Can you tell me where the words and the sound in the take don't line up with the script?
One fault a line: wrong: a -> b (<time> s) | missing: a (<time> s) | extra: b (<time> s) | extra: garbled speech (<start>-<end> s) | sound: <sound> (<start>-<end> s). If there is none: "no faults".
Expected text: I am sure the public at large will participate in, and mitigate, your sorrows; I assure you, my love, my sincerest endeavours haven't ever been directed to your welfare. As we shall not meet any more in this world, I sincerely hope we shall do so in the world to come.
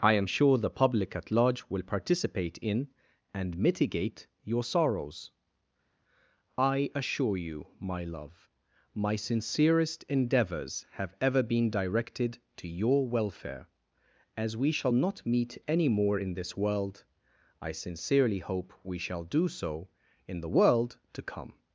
wrong: haven't -> have (10.9 s)